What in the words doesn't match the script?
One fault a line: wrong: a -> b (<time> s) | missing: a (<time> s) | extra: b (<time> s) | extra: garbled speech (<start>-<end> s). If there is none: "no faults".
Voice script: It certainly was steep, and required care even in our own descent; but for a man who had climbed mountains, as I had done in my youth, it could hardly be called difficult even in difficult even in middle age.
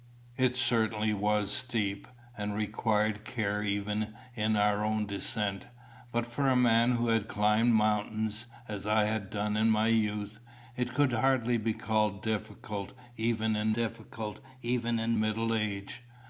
no faults